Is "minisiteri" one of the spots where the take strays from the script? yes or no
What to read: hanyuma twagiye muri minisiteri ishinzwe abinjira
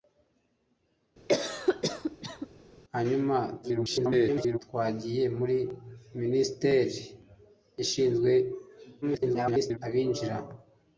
no